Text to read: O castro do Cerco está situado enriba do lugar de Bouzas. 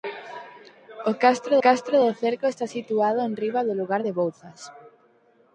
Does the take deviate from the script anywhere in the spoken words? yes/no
yes